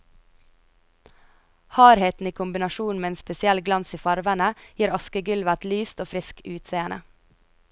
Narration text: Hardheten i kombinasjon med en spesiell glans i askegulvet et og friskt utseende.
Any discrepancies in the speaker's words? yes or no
yes